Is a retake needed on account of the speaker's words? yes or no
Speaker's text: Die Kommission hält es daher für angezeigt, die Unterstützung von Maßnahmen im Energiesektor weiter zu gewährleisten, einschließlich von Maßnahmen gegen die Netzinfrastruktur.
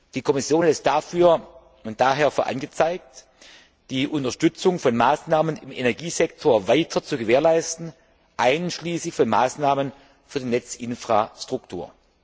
yes